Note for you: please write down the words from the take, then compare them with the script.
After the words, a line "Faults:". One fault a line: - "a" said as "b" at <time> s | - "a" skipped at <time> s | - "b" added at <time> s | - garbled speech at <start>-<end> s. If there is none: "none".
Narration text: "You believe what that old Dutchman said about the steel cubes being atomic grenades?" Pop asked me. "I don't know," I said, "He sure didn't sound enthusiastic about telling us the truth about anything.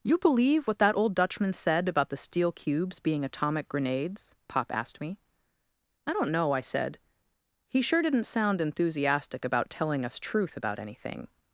"You believe what that old Dutchman said about the steel cubes being atomic grenades?" Pop asked me. "I don't know," I said, "He sure didn't sound enthusiastic about telling us truth about anything.
Faults:
- "the" skipped at 10.2 s